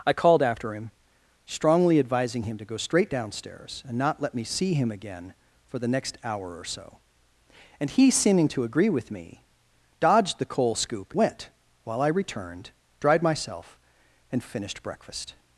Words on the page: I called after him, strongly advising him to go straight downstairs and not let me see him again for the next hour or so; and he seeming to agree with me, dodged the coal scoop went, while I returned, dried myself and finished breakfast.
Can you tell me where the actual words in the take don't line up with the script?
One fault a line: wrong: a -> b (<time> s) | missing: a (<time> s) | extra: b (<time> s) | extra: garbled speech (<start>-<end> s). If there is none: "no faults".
no faults